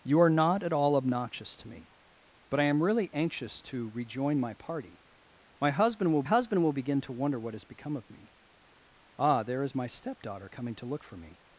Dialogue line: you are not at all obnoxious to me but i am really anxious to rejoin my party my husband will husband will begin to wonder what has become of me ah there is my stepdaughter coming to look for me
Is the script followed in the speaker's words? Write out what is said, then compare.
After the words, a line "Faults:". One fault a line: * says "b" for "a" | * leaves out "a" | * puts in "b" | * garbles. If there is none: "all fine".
you are not at all obnoxious to me but i am really anxious to rejoin my party my husband will husband will begin to wonder what has become of me ah there is my stepdaughter coming to look for me
Faults:
all fine